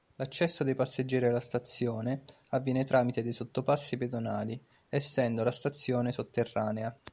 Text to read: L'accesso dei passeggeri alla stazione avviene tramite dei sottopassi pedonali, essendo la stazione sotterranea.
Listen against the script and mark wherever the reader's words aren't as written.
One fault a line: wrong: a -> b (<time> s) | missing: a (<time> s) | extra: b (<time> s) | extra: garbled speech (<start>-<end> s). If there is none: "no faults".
no faults